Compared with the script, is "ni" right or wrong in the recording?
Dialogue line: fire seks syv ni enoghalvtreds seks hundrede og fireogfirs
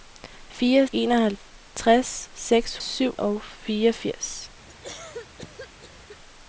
wrong